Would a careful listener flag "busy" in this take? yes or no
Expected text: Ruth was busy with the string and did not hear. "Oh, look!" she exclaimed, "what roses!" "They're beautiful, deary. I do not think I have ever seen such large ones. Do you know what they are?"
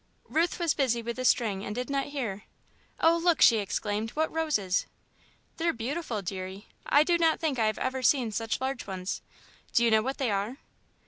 no